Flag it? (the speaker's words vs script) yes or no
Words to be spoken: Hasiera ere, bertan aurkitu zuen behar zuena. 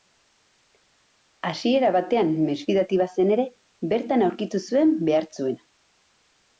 yes